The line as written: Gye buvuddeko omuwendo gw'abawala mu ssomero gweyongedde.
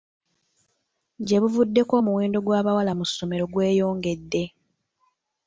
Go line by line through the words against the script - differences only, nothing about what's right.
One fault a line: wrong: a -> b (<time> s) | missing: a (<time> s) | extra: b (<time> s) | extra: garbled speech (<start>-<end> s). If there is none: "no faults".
no faults